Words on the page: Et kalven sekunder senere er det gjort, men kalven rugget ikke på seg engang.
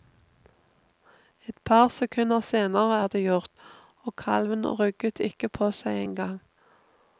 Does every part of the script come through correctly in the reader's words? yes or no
no